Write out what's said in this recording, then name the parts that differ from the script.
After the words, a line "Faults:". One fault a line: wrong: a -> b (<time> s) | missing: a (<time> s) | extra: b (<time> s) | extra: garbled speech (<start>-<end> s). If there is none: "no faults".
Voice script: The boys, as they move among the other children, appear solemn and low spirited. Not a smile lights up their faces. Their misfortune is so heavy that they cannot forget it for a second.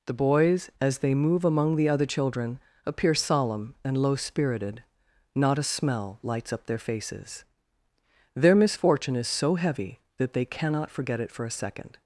The boys, as they move among the other children, appear solemn and low spirited. Not a smell lights up their faces. Their misfortune is so heavy that they cannot forget it for a second.
Faults:
wrong: smile -> smell (5.6 s)